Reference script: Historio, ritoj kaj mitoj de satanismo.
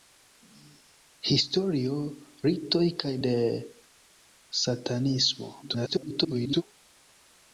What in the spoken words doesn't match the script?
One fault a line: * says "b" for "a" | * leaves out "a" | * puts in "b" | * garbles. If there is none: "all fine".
* leaves out "mitoj"
* garbles